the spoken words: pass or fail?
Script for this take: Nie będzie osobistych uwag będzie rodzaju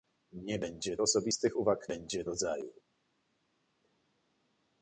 pass